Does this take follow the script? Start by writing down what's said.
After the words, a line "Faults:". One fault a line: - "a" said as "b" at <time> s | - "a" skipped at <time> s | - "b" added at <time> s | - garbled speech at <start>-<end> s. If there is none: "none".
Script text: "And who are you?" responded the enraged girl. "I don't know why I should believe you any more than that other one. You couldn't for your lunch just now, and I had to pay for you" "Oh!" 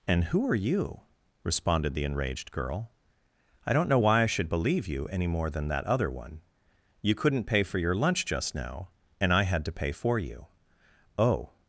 "And who are you?" responded the enraged girl. "I don't know why I should believe you any more than that other one. You couldn't pay for your lunch just now, and I had to pay for you" "Oh!"
Faults:
- "pay" added at 7.4 s